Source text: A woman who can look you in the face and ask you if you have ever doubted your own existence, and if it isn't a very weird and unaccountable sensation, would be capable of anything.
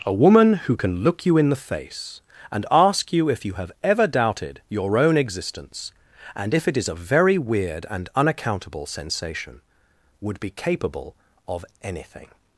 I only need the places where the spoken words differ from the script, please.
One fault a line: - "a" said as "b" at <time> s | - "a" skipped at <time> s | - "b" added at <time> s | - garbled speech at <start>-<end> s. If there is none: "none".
- "isn't" said as "is" at 6.8 s